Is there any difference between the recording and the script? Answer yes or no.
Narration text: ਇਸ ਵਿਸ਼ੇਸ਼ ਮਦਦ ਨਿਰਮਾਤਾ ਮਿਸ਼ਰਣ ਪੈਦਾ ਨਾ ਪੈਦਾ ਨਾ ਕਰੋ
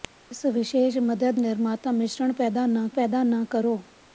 no